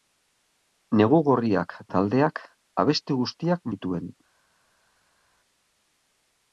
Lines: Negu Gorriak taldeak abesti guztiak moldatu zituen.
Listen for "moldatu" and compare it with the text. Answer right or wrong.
wrong